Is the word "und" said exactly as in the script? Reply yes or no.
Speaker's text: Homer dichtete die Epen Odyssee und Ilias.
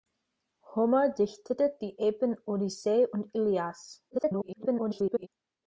yes